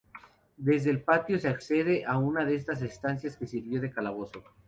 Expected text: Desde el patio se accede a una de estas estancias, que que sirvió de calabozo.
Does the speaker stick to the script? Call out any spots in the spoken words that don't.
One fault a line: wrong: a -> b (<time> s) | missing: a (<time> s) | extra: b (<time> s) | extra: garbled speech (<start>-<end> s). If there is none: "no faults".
missing: que (3.5 s)